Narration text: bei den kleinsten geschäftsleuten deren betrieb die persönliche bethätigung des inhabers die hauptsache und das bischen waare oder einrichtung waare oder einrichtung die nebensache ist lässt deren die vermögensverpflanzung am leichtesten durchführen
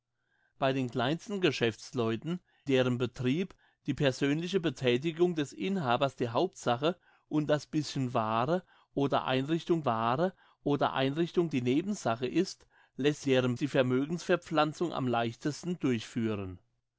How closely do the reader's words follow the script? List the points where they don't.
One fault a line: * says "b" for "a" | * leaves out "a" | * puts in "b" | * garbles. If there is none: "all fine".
all fine